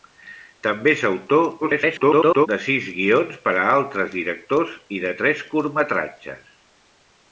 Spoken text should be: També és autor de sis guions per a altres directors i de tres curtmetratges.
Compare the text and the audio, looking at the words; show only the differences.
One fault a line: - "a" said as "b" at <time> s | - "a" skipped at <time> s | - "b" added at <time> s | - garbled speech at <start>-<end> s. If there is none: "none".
- garbled speech at 1.6-2.5 s